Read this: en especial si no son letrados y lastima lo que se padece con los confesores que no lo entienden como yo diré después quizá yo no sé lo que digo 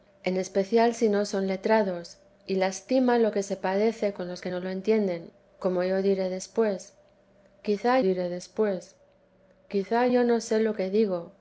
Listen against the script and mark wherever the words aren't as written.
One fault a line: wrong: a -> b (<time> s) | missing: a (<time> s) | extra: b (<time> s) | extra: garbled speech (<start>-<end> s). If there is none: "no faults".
missing: confesores (4.4 s)
extra: diré después quizá (8.0 s)